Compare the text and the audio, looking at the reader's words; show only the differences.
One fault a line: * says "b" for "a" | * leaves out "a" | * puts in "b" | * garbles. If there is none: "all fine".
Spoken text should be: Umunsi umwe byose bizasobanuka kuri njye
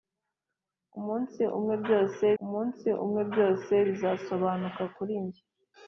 * puts in "umunsi umwe byose"